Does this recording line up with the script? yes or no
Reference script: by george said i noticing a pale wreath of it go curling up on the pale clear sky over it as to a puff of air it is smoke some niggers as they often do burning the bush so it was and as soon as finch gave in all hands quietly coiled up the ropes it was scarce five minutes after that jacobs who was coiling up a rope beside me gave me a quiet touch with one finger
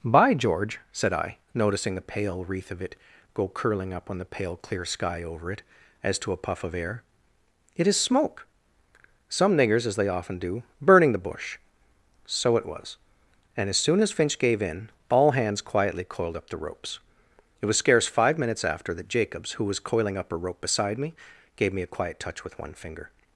no